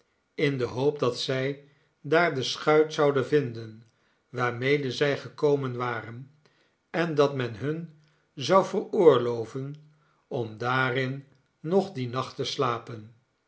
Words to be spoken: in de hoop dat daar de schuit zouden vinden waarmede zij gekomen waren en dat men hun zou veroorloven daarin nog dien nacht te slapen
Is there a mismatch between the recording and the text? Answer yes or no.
yes